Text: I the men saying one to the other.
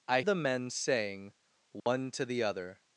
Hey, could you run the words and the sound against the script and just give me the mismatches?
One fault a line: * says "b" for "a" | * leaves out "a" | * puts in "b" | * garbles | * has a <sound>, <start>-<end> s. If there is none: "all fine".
* has a dropout, 1.8-1.9 s